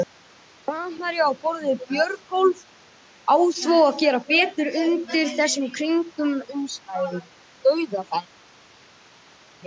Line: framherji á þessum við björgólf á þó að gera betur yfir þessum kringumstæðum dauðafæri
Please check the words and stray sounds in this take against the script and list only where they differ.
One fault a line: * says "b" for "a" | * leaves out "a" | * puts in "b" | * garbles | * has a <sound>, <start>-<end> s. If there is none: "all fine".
* says "borð" for "þessum"
* says "undir" for "yfir"